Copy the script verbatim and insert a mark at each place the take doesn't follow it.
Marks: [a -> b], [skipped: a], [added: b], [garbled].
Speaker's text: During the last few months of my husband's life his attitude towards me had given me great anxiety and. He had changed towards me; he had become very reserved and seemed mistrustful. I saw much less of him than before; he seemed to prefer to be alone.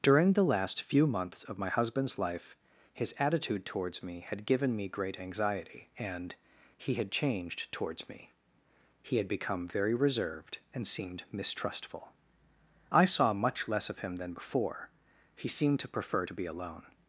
During the last few months of my husband's life his attitude towards me had given me great anxiety and. He had changed towards me; he had become very reserved and seemed mistrustful. I saw much less of him than before; he seemed to prefer to be alone.